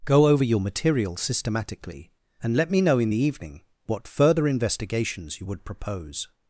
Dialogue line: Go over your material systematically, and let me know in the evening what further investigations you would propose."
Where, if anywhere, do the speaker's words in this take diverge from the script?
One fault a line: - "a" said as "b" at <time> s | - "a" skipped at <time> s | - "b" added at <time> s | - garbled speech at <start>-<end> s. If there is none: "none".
none